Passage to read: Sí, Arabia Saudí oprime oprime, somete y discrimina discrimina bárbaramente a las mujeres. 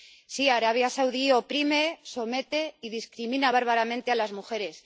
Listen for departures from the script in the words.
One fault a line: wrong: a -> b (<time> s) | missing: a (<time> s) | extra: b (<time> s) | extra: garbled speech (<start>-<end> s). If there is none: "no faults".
missing: oprime (1.8 s)
missing: discrimina (3.5 s)